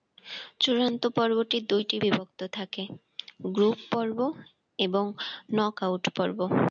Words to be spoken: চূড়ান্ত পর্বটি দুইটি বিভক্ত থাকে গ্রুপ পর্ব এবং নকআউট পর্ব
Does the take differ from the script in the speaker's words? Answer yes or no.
no